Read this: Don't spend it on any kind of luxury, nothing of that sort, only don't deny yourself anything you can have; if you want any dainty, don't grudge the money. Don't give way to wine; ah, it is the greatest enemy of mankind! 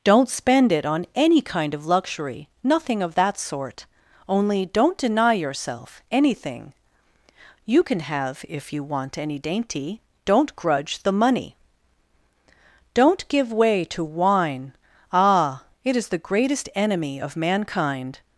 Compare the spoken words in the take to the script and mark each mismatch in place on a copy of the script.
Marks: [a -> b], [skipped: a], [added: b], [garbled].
Don't spend it on any kind of luxury, nothing of that sort, only don't deny yourself anything you can have; if you want any dainty, don't grudge the money. Don't give way to wine; ah, it is the greatest enemy of mankind!